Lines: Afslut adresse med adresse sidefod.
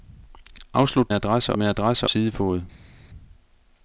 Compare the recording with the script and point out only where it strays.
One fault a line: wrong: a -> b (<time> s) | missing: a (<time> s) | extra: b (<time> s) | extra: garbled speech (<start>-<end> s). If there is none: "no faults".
no faults